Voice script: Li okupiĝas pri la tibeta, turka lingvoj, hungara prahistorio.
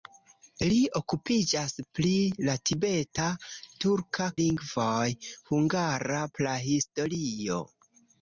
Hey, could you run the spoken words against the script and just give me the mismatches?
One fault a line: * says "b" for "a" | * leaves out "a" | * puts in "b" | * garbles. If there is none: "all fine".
all fine